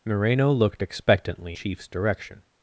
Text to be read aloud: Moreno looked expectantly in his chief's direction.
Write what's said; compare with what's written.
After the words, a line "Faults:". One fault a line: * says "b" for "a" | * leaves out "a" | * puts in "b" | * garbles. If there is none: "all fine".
Moreno looked expectantly chief's direction.
Faults:
* leaves out "in his"